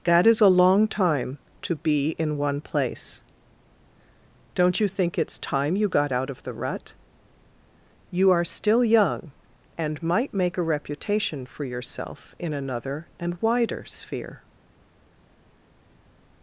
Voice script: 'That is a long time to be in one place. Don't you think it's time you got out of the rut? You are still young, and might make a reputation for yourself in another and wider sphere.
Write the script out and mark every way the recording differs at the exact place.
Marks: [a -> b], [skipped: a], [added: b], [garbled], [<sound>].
'That is a long time to be in one place. Don't you think it's time you got out of the rut? You are still young, and might make a reputation for yourself in another and wider sphere.